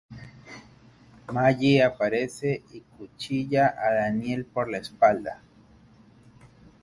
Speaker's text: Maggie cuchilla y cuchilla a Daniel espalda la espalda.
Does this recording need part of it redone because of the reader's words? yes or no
yes